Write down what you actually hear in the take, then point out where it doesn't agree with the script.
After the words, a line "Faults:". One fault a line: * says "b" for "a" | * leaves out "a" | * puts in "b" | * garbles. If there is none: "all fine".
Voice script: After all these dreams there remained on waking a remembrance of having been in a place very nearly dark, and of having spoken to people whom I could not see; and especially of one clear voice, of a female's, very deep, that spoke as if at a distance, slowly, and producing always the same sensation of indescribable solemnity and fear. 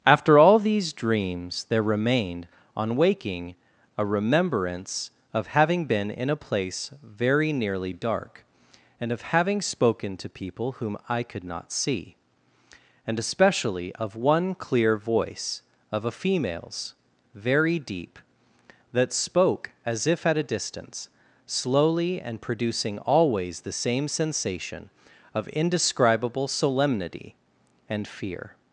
After all these dreams there remained on waking a remembrance of having been in a place very nearly dark, and of having spoken to people whom I could not see; and especially of one clear voice, of a female's, very deep, that spoke as if at a distance, slowly, and producing always the same sensation of indescribable solemnity and fear.
Faults:
all fine